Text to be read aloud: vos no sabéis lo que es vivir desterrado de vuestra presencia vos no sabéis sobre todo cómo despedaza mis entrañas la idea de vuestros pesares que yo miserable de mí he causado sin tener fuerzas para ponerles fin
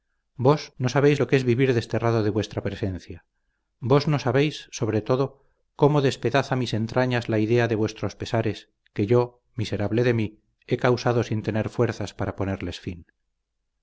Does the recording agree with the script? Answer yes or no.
yes